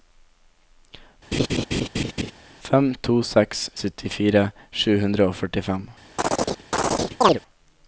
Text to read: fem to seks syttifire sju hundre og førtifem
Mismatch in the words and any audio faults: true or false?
true